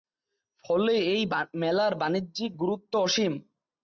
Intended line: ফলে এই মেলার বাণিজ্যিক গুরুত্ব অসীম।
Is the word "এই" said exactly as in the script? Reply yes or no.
yes